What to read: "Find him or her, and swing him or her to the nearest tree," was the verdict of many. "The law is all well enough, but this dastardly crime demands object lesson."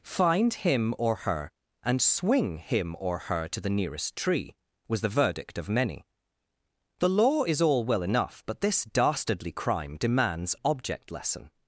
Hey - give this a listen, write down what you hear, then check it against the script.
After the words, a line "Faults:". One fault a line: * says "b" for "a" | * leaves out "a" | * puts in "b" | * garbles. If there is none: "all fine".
"Find him or her, and swing him or her to the nearest tree," was the verdict of many. "The law is all well enough, but this dastardly crime demands object lesson."
Faults:
all fine